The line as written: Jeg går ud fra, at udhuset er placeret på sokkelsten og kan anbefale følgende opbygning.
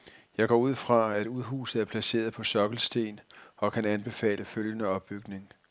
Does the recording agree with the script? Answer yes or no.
yes